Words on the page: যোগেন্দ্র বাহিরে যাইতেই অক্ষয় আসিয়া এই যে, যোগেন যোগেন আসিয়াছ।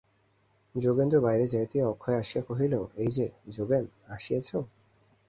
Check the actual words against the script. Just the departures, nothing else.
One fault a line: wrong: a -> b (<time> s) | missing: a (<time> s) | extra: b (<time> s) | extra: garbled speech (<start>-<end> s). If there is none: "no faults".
extra: কহিল (2.5 s)
missing: যোগেন (3.8 s)